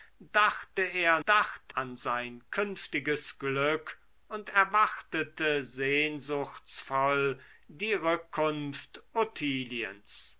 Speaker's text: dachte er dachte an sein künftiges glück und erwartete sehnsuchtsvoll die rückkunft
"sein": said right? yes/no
yes